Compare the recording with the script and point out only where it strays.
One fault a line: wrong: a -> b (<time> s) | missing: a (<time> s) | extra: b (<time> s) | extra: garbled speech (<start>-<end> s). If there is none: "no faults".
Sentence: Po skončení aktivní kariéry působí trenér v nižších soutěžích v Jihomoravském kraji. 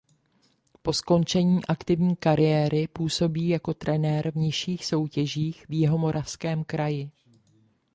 extra: jako (3.5 s)